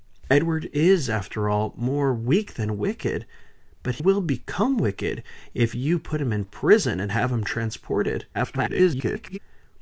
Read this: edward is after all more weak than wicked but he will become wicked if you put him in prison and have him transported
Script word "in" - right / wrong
right